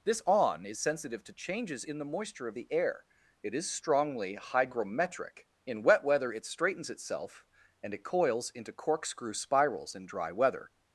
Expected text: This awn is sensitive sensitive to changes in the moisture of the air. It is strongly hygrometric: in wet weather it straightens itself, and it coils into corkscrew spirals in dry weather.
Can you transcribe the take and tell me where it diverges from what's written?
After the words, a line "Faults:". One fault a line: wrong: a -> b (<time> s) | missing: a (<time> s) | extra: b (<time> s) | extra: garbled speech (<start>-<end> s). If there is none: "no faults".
This awn is sensitive to changes in the moisture of the air. It is strongly hygrometric: in wet weather it straightens itself, and it coils into corkscrew spirals in dry weather.
Faults:
missing: sensitive (1.2 s)